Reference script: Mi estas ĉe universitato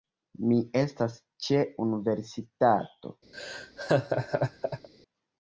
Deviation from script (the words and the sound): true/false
true